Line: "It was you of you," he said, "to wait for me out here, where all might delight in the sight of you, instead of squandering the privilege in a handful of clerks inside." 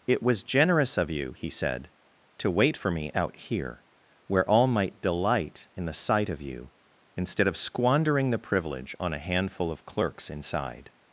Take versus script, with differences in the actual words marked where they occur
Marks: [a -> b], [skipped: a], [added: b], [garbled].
"It was [you -> generous] of you," he said, "to wait for me out here, where all might delight in the sight of you, instead of squandering the privilege [in -> on] a handful of clerks inside."